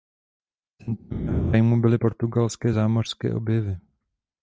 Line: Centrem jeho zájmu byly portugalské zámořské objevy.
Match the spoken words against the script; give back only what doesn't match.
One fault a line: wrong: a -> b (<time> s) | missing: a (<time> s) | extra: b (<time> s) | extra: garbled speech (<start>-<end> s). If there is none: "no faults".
no faults